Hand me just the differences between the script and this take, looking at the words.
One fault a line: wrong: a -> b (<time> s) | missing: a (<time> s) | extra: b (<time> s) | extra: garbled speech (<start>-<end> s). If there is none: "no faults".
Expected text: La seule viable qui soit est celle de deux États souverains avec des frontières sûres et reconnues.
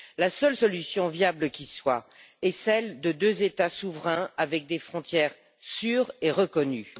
extra: solution (0.5 s)